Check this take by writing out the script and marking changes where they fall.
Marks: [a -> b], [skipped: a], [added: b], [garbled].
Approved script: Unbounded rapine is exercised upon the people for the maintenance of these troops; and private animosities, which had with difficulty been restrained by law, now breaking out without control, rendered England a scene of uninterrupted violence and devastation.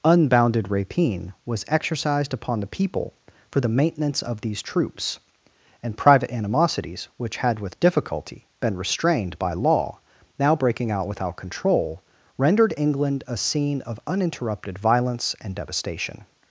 Unbounded rapine [is -> was] exercised upon the people for the maintenance of these troops; and private animosities, which had with difficulty been restrained by law, now breaking out without control, rendered England a scene of uninterrupted violence and devastation.